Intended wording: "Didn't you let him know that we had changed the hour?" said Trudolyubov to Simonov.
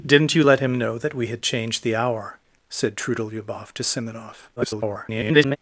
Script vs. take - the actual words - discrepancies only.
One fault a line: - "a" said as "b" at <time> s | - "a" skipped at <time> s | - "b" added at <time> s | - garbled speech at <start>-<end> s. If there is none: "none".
- garbled speech at 4.6-5.6 s